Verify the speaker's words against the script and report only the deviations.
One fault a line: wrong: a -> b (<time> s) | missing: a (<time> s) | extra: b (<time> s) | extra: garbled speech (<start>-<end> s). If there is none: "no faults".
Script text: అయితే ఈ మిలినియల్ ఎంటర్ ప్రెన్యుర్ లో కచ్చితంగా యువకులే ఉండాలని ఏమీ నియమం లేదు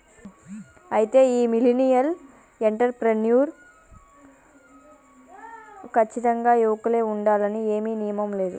missing: లో (3.5 s)